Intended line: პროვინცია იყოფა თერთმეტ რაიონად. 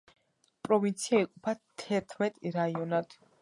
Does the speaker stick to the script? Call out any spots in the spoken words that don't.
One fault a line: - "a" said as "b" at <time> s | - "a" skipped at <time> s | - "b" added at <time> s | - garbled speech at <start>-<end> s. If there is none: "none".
none